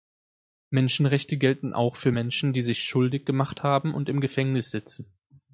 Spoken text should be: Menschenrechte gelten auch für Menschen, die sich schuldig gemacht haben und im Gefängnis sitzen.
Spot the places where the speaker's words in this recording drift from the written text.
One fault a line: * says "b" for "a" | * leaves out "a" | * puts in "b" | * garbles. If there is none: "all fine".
all fine